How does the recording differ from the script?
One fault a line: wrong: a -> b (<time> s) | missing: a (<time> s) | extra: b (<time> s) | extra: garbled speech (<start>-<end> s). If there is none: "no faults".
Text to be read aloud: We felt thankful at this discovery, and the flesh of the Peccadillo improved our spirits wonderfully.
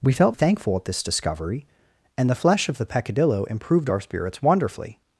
no faults